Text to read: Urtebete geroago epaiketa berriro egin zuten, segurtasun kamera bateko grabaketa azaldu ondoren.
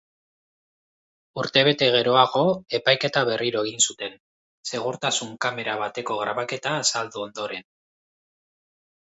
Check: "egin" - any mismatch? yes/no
no